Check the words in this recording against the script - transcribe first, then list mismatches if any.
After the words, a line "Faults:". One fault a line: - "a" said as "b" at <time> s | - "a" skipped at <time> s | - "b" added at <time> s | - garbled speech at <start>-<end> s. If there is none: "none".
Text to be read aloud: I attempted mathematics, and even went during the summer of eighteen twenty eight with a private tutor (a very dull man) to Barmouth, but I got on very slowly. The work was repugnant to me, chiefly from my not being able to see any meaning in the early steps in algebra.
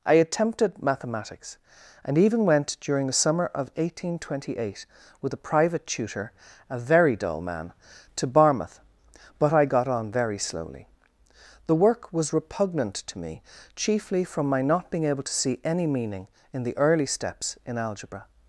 I attempted mathematics, and even went during the summer of eighteen twenty eight with a private tutor (a very dull man) to Barmouth, but I got on very slowly. The work was repugnant to me, chiefly from my not being able to see any meaning in the early steps in algebra.
Faults:
none